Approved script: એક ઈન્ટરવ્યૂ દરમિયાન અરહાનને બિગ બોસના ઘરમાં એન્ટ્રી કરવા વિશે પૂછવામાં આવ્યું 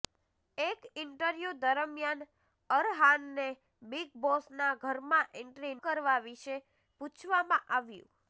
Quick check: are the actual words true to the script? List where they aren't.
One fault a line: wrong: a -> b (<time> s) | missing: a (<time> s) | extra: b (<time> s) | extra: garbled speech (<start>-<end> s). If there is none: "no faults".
no faults